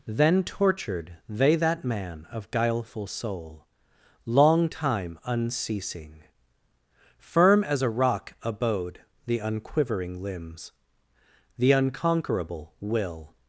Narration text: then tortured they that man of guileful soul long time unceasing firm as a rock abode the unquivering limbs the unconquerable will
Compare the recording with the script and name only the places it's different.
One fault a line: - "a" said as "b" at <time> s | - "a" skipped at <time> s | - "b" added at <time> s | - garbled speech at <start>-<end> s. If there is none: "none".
none